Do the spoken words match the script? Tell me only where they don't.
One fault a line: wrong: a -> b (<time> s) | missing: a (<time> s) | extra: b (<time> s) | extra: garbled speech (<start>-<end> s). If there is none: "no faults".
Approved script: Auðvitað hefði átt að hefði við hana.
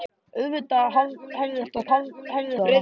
no faults